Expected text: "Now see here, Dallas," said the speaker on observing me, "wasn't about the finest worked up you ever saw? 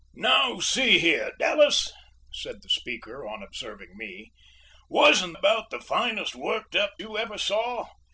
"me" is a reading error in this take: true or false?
false